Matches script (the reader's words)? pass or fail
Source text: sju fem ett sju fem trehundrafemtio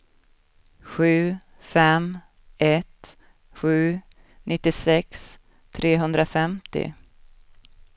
fail